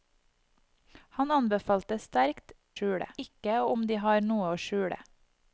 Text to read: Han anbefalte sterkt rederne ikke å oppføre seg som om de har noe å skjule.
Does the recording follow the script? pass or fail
fail